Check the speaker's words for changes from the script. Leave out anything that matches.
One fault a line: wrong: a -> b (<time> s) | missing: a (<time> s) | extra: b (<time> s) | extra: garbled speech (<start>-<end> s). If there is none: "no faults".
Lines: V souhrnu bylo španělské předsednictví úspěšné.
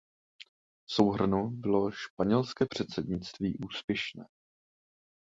no faults